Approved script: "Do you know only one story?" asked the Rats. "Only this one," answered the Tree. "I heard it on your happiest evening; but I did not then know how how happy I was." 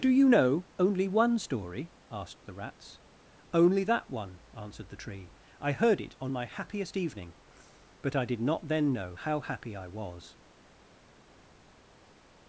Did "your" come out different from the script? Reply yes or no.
yes